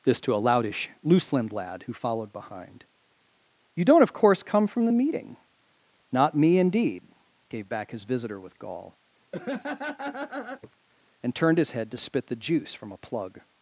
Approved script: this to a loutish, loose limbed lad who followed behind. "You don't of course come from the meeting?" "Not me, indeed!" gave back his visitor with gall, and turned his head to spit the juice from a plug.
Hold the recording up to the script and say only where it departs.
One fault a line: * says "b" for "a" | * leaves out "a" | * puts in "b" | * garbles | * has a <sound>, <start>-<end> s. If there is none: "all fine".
* has a laugh, 9.3-10.8 s